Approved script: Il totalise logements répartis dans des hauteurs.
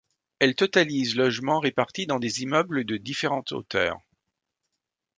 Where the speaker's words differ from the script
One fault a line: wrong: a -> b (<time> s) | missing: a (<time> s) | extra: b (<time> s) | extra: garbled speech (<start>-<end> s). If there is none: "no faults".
wrong: Il -> Elle (0.4 s)
extra: immeubles de différentes (2.4 s)